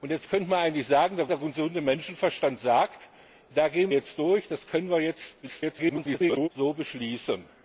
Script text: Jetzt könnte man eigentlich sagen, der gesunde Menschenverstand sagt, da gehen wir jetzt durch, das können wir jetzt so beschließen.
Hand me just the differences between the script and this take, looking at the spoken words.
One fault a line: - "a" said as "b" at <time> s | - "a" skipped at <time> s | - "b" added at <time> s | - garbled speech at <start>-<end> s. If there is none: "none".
- "der" added at 1.3 s
- "wir" skipped at 3.9 s
- garbled speech at 5.4-6.5 s